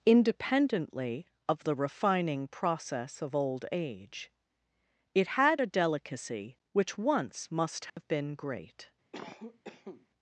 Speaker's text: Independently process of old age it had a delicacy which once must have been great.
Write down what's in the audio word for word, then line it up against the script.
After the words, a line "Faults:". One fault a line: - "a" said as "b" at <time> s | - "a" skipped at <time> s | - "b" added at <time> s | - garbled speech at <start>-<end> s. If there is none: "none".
Independently of the refining process of old age it had a delicacy which once must have been great.
Faults:
- "of the refining" added at 1.5 s